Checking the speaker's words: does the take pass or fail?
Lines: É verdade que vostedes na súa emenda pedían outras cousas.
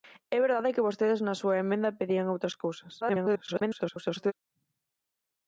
fail